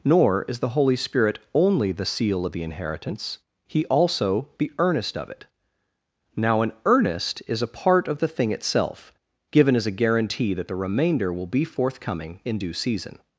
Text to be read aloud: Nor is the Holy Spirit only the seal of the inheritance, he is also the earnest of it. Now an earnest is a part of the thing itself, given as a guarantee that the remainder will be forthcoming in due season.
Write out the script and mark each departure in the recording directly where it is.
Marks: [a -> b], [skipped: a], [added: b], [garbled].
Nor is the Holy Spirit only the seal of the inheritance, he [skipped: is] also the earnest of it. Now an earnest is a part of the thing itself, given as a guarantee that the remainder will be forthcoming in due season.